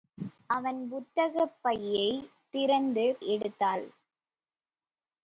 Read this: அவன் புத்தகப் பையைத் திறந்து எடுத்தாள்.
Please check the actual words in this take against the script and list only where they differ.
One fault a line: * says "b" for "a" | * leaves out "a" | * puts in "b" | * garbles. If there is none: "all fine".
all fine